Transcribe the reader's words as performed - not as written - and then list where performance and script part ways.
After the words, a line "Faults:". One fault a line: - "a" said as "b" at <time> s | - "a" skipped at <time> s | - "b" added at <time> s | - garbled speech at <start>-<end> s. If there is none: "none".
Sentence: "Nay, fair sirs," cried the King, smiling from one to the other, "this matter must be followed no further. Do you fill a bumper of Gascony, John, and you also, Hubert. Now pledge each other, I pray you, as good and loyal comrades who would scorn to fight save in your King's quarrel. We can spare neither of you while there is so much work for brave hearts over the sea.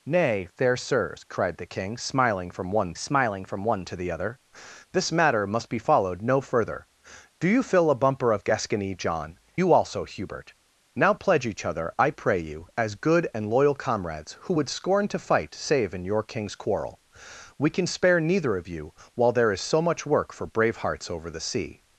"Nay, fair sirs," cried the King, smiling from one smiling from one to the other, "this matter must be followed no further. Do you fill a bumper of Gascony, John, you also, Hubert. Now pledge each other, I pray you, as good and loyal comrades who would scorn to fight save in your King's quarrel. We can spare neither of you while there is so much work for brave hearts over the sea.
Faults:
- "smiling from one" added at 2.9 s
- "and" skipped at 9.4 s